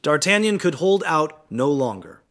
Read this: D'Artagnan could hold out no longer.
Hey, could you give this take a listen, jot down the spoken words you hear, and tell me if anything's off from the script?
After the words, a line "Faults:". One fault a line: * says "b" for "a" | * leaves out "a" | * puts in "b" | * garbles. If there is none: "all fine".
D'Artagnan could hold out no longer.
Faults:
all fine